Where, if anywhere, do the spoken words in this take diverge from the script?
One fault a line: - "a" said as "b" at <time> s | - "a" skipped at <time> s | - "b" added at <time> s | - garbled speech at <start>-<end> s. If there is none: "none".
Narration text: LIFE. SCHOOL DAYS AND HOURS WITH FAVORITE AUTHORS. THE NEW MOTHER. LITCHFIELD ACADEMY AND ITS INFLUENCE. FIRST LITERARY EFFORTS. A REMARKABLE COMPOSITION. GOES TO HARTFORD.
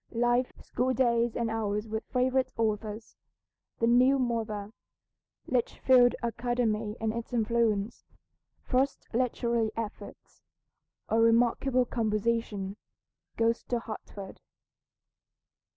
none